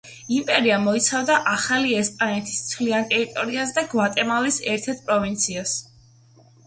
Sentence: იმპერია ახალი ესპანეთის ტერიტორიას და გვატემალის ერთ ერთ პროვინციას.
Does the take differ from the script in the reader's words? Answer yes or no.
yes